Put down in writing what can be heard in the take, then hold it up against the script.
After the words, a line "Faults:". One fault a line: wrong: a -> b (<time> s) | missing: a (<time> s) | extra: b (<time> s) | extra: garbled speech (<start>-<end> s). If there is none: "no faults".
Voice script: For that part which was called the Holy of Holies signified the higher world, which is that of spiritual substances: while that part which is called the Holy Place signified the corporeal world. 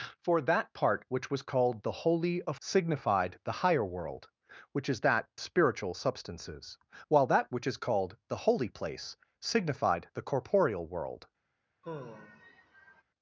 For that part which was called the Holy of Signified the higher world, which is that spiritual substances: while that which is called the Holy Place signified the corporeal world.
Faults:
missing: Holies (2.6 s)
missing: of (5.3 s)
missing: part (7.5 s)